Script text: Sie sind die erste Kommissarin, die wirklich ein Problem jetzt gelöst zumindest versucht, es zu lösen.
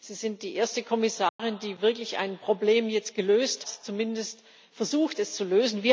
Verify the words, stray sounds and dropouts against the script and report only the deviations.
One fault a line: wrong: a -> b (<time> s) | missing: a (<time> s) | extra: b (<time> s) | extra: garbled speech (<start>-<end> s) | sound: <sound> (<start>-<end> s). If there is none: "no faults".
sound: dropout (1.3-1.4 s)